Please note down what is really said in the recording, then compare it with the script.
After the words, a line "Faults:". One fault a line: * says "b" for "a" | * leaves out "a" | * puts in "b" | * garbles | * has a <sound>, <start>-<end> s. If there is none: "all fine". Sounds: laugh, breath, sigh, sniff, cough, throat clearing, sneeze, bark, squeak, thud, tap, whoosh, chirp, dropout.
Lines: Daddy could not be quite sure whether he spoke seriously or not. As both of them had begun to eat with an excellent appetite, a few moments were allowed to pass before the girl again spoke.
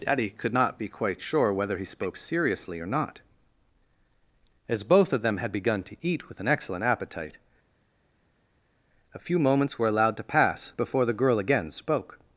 Daddy could not be quite sure whether he spoke seriously or not. As both of them had begun to eat with an excellent appetite, a few moments were allowed to pass before the girl again spoke.
Faults:
all fine